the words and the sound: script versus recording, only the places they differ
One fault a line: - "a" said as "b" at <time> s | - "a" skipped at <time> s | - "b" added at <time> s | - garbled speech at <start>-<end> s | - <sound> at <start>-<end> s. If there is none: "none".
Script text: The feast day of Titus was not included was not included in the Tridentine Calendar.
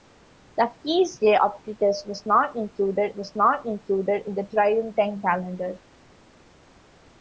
none